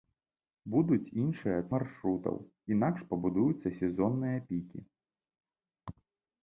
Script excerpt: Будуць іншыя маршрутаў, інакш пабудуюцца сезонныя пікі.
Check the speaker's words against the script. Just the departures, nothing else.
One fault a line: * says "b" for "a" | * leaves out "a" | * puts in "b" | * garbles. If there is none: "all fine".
all fine